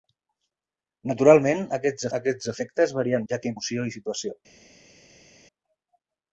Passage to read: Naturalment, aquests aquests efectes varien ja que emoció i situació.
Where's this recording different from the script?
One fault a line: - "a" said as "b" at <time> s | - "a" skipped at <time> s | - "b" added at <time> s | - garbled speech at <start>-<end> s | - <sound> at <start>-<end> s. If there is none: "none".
none